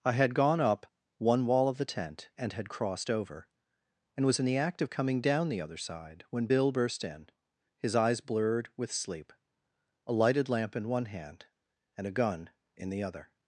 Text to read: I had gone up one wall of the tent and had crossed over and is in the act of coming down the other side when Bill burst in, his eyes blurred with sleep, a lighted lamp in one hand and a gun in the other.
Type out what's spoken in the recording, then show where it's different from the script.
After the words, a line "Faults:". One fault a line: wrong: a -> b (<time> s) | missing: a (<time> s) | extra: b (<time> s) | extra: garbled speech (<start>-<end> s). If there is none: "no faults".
I had gone up one wall of the tent and had crossed over and was in the act of coming down the other side when Bill burst in, his eyes blurred with sleep, a lighted lamp in one hand and a gun in the other.
Faults:
wrong: is -> was (4.2 s)